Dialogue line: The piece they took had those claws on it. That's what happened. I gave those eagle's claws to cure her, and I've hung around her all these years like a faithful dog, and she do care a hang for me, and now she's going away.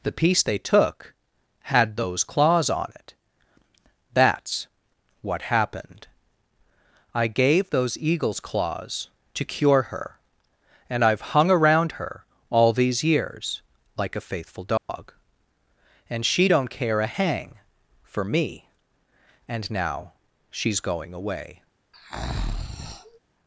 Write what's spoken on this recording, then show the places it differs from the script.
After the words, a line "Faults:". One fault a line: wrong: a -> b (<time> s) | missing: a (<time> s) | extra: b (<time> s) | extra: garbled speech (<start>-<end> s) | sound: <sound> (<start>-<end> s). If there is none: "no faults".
The piece they took had those claws on it. That's what happened. I gave those eagle's claws to cure her, and I've hung around her all these years like a faithful dog, and she don't care a hang for me, and now she's going away.
Faults:
sound: dropout (14.8-14.9 s)
wrong: do -> don't (16.5 s)
sound: breath (21.9-23.2 s)